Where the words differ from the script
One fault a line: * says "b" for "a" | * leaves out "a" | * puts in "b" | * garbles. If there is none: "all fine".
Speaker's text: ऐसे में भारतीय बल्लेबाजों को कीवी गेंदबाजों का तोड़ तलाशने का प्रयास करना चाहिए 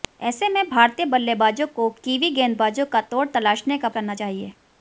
* leaves out "प्रयास"